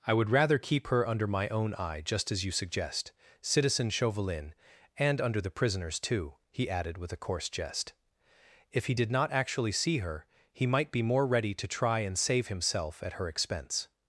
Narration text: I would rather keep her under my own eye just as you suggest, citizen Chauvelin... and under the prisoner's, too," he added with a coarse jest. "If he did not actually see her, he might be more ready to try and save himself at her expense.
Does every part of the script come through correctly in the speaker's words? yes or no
yes